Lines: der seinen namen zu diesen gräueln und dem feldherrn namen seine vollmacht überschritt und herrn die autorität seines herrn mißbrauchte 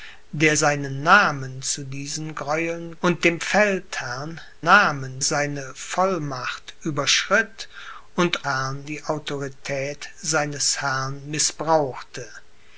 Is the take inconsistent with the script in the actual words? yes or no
no